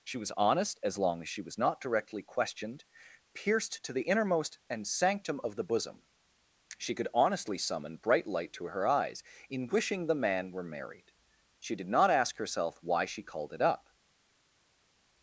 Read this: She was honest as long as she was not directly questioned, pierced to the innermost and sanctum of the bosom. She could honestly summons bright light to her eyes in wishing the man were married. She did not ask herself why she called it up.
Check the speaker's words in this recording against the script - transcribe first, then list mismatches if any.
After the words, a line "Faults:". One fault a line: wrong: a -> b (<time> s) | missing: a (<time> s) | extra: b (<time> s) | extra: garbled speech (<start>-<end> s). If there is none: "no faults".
She was honest as long as she was not directly questioned, pierced to the innermost and sanctum of the bosom. She could honestly summon bright light to her eyes in wishing the man were married. She did not ask herself why she called it up.
Faults:
wrong: summons -> summon (7.6 s)